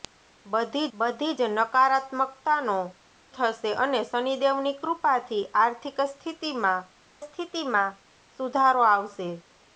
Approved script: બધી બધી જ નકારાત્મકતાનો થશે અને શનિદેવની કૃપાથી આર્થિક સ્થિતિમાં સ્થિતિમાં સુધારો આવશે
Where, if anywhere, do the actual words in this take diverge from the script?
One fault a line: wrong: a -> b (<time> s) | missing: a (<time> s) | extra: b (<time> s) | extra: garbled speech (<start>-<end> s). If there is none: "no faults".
no faults